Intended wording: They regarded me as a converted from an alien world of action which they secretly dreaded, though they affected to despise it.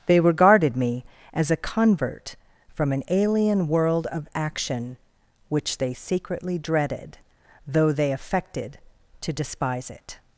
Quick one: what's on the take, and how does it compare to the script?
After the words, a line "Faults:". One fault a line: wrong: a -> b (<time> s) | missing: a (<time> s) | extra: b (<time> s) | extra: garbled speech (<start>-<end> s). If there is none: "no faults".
They regarded me as a convert from an alien world of action which they secretly dreaded, though they affected to despise it.
Faults:
wrong: converted -> convert (1.6 s)